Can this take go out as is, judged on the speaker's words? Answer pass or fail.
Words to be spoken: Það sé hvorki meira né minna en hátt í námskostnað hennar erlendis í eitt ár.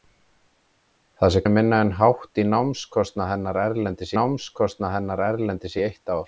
fail